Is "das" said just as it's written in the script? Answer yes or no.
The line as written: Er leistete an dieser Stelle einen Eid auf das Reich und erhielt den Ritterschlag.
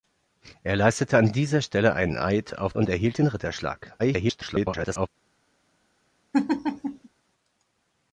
no